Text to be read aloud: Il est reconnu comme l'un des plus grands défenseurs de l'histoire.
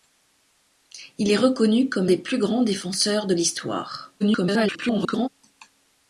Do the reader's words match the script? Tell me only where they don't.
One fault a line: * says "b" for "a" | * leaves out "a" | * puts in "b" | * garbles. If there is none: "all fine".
* leaves out "l'un"
* garbles